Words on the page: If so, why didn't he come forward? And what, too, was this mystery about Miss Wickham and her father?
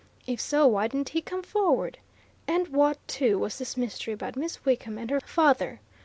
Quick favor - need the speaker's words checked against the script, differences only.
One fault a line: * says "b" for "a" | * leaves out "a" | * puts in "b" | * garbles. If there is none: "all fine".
all fine